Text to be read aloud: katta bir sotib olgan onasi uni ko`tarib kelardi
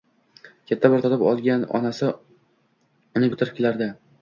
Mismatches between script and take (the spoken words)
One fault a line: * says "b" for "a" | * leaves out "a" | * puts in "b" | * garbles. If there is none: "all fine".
all fine